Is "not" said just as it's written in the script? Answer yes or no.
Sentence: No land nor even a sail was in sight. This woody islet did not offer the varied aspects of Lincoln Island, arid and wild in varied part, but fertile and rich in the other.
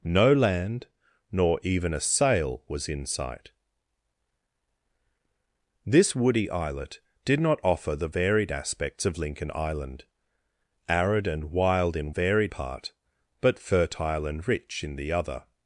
yes